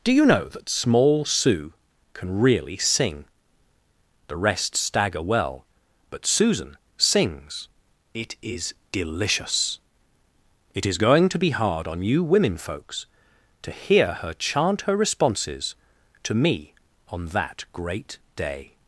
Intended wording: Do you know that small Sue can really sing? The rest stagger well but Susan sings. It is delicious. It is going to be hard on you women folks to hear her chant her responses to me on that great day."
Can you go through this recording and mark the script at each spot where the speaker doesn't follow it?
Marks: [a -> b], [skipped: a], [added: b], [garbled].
Do you know that small Sue can really sing? The rest stagger well but Susan sings. It is delicious. It is going to be hard on you women folks to hear her chant her responses to me on that great day."